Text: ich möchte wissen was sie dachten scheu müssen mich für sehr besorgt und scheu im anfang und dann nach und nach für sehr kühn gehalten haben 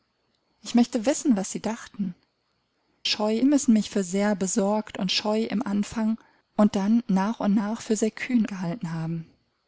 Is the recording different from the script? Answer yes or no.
no